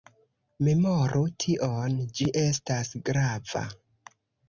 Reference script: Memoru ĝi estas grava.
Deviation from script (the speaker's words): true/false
true